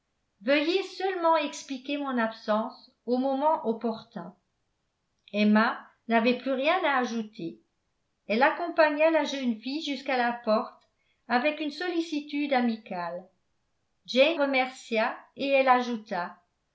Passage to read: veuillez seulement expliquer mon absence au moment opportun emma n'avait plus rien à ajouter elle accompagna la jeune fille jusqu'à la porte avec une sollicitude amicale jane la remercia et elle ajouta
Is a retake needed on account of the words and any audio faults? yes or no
yes